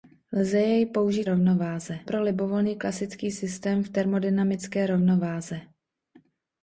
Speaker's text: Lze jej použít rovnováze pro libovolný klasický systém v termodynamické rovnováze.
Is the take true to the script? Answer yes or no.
yes